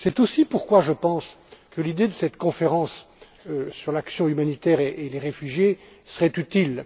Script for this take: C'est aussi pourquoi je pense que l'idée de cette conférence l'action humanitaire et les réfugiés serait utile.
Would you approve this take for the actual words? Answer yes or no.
no